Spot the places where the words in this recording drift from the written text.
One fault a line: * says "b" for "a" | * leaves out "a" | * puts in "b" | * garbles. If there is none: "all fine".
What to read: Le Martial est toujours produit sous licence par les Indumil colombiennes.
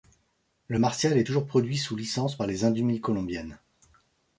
all fine